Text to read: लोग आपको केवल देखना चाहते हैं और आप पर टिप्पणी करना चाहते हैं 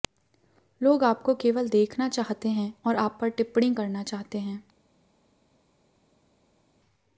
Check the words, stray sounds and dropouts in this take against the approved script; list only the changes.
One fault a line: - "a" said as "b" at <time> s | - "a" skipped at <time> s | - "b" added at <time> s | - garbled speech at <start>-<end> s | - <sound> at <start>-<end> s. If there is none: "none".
none